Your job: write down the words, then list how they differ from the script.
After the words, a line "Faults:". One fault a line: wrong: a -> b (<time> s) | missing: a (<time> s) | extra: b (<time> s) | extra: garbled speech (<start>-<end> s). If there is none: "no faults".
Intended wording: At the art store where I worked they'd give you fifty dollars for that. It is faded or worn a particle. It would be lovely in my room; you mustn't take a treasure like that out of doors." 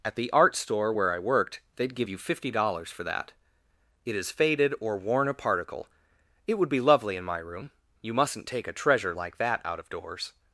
At the art store where I worked they'd give you fifty dollars for that. It is faded or worn a particle. It would be lovely in my room; you mustn't take a treasure like that out of doors."
Faults:
no faults